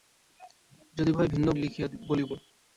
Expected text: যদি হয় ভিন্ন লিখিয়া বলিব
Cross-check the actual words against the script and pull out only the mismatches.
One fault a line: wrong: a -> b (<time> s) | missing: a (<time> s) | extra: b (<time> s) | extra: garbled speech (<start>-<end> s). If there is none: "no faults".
no faults